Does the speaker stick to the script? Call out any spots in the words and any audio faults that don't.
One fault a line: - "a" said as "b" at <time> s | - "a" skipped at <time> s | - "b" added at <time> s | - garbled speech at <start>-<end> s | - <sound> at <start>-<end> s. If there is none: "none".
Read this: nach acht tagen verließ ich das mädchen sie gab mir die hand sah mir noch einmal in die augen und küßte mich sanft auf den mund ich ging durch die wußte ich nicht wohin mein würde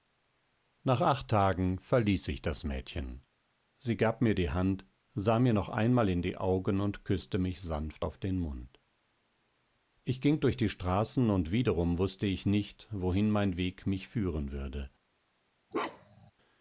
- "straßen und wiederum" added at 10.7 s
- "weg mich führen" added at 13.5 s
- bark at 15.7-16.3 s